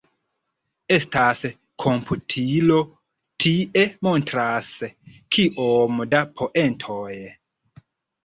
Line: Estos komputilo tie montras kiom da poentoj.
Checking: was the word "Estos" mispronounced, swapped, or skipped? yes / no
yes